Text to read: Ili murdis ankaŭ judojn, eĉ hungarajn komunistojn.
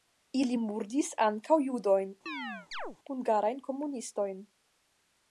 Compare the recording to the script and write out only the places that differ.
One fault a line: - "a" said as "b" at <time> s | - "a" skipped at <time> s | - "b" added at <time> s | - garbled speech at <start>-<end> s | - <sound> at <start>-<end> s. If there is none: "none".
- "eĉ" skipped at 2.1 s
- chirp at 2.3-3.0 s